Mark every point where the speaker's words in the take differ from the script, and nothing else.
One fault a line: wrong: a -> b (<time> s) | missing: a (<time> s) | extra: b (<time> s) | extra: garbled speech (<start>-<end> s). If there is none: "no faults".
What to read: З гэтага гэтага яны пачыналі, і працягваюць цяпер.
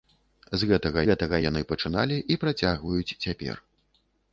no faults